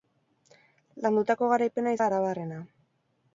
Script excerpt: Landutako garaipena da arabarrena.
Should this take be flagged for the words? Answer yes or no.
no